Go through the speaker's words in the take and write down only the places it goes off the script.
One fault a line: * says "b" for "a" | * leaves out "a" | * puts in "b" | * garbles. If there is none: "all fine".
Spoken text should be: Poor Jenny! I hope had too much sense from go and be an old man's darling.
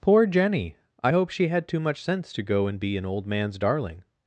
* puts in "she"
* says "to" for "from"